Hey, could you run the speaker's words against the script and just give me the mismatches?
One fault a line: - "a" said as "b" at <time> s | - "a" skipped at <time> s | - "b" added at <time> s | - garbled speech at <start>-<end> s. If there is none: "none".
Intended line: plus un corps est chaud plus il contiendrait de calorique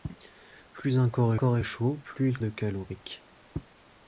- "corps" added at 1.4 s
- "contiendrait" skipped at 2.4 s